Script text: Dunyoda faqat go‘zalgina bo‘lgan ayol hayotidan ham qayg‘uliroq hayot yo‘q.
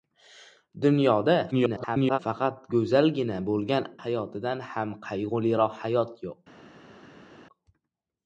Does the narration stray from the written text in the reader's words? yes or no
yes